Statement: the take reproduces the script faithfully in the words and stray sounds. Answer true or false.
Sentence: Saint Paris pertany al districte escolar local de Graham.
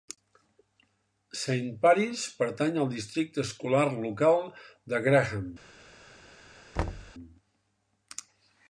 false